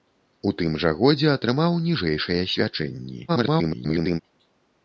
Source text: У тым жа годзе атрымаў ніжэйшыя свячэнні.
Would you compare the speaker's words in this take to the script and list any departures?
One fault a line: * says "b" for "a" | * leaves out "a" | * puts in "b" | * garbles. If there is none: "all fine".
* garbles